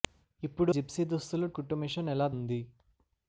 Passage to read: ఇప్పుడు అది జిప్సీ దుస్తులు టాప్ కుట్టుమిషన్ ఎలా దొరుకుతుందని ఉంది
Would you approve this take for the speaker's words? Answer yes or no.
no